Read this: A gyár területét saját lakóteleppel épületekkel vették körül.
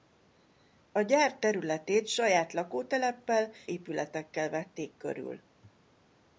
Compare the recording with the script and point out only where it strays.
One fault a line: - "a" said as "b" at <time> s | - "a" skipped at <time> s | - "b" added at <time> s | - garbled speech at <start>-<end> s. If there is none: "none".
none